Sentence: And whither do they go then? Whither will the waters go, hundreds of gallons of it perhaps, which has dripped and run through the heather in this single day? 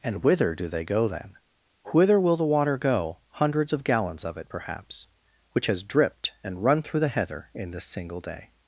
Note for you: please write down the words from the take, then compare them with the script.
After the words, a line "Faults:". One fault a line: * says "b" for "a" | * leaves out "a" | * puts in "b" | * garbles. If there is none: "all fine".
And whither do they go then? Whither will the water go, hundreds of gallons of it perhaps, which has dripped and run through the heather in this single day?
Faults:
* says "water" for "waters"